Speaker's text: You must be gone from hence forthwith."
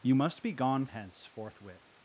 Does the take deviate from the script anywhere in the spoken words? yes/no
yes